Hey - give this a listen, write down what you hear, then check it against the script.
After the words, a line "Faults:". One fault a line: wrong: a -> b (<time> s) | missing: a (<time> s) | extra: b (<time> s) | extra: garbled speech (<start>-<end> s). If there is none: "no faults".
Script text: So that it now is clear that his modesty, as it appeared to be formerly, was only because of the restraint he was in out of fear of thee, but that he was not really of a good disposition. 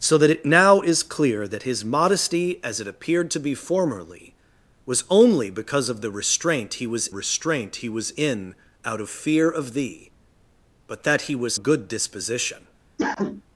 So that it now is clear that his modesty, as it appeared to be formerly, was only because of the restraint he was restraint he was in out of fear of thee, but that he was a good disposition.
Faults:
extra: restraint he was (7.1 s)
missing: not really of (11.6 s)